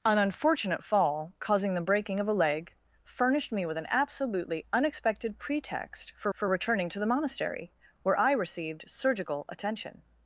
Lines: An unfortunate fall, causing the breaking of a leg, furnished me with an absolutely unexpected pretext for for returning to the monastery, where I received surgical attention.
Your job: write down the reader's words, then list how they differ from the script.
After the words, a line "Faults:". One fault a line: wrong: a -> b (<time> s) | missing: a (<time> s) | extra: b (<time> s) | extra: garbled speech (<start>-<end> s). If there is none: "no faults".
An unfortunate fall, causing the breaking of a leg, furnished me with an absolutely unexpected pretext for for returning to the monastery, where I received surgical attention.
Faults:
no faults